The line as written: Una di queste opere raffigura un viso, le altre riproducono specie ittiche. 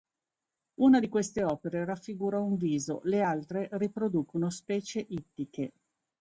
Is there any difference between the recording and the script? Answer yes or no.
no